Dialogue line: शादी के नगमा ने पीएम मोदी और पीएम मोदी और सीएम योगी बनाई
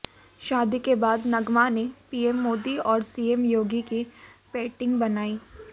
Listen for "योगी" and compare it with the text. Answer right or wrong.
wrong